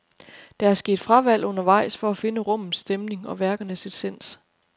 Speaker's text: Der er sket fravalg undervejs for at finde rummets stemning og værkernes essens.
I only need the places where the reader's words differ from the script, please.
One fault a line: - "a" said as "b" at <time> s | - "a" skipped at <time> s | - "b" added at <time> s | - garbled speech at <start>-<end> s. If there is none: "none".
none